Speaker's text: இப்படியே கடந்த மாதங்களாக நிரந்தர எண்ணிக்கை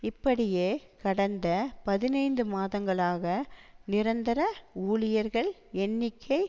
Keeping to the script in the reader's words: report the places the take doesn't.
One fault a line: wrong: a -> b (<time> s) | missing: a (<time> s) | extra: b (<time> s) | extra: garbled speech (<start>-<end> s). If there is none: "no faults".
extra: பதினைந்து (1.8 s)
extra: ஊழியர்கள் (4.8 s)